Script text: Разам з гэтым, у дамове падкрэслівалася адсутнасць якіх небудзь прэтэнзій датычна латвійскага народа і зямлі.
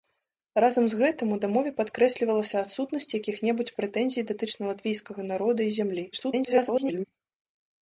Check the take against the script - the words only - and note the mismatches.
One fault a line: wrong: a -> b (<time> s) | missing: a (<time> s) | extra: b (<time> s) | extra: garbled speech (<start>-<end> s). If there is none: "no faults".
extra: garbled speech (6.1-7.0 s)